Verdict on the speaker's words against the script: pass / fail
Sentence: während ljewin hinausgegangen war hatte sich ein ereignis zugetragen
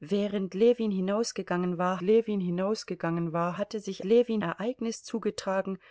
fail